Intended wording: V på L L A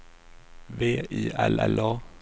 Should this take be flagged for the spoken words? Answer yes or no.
yes